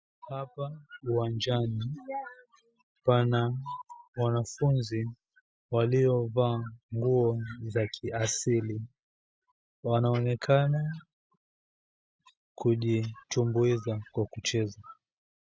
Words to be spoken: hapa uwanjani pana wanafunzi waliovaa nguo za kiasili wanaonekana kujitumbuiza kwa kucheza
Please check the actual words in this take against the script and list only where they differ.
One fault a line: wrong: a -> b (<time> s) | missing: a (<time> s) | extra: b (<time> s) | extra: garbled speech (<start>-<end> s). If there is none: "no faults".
no faults